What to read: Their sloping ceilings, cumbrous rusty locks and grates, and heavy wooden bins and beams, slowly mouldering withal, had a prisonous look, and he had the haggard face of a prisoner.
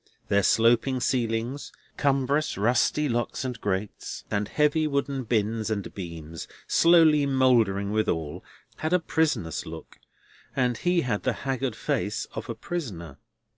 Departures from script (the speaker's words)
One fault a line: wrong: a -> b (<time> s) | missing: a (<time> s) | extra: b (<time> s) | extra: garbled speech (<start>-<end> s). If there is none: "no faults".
no faults